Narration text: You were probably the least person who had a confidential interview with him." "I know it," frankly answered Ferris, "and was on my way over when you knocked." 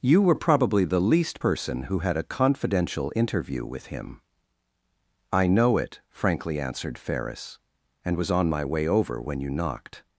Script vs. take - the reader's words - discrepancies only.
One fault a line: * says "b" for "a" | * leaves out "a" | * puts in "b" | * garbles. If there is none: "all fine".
all fine